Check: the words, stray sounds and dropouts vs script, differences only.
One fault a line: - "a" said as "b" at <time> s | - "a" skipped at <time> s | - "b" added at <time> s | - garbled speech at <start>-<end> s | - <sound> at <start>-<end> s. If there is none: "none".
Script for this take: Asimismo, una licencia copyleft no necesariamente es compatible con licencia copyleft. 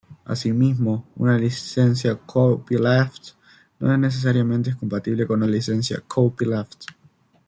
none